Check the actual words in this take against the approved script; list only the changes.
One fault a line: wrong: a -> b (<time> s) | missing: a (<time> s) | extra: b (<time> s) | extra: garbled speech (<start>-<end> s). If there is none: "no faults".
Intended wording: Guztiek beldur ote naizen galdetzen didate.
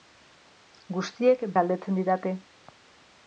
missing: beldur ote naizen (1.4 s)